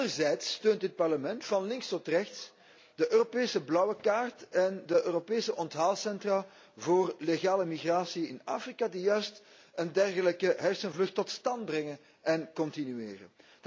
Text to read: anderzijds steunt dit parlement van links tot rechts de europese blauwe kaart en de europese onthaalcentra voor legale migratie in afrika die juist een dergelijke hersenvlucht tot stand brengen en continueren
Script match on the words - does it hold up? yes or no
yes